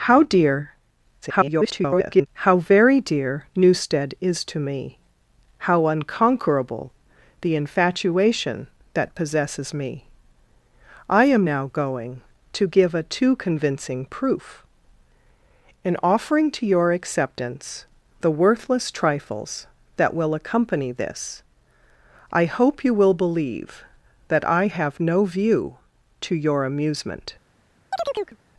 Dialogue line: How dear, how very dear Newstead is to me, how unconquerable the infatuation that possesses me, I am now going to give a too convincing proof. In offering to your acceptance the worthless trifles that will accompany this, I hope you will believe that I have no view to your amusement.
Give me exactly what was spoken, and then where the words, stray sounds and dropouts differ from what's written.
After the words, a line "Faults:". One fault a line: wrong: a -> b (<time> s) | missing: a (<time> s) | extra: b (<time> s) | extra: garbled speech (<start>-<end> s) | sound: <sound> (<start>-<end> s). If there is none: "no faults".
How dear, [garbled] how very dear Newstead is to me, how unconquerable the infatuation that possesses me, I am now going to give a too convincing proof. In offering to your acceptance the worthless trifles that will accompany this, I hope you will believe that I have no view to your amusement.
Faults:
extra: garbled speech (1.2-2.3 s)
sound: chirp (27.9-28.4 s)